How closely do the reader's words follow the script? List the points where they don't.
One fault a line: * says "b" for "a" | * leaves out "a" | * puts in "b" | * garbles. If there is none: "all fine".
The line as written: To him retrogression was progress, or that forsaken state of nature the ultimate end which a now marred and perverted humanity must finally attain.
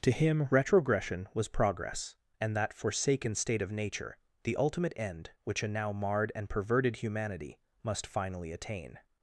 * says "and" for "or"